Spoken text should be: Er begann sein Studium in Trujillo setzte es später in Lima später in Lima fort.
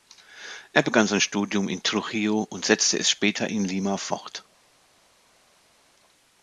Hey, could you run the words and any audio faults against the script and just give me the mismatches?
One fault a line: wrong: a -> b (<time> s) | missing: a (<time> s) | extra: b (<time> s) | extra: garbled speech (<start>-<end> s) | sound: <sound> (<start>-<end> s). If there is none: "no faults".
extra: und (2.5 s)
missing: später in Lima (4.0 s)